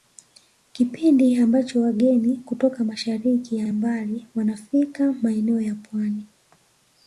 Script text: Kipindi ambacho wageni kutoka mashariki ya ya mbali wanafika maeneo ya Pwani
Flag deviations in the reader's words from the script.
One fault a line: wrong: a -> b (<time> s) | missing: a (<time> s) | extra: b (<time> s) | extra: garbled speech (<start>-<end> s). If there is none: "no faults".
no faults